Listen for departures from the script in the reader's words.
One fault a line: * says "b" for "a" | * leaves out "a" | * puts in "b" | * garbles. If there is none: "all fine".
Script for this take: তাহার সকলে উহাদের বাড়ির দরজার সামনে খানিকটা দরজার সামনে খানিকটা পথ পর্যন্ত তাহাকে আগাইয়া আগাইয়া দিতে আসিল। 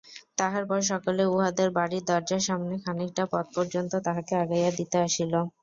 * puts in "পর"
* leaves out "দরজার সামনে খানিকটা"
* leaves out "আগাইয়া"